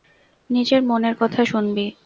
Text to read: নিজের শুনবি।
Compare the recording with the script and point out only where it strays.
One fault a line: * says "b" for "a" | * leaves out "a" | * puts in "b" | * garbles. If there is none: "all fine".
* puts in "মনের কথা"